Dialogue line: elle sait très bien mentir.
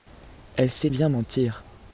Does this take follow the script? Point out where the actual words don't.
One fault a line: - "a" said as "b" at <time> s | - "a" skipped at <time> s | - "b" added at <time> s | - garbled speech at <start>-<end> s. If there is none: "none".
- "très" skipped at 0.9 s